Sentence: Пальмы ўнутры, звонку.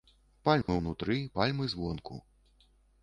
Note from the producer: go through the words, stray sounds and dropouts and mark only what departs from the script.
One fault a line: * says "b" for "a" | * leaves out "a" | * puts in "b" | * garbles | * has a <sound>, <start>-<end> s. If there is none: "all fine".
* has a dropout, 0.6-0.7 s
* puts in "пальмы"